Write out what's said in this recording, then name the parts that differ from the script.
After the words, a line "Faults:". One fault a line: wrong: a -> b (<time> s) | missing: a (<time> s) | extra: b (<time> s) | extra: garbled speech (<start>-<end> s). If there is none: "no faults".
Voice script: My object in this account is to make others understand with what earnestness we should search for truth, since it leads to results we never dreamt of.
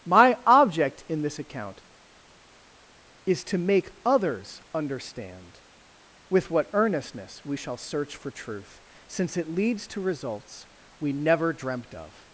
My object in this account is to make others understand with what earnestness we shall search for truth, since it leads to results we never dreamt of.
Faults:
wrong: should -> shall (7.6 s)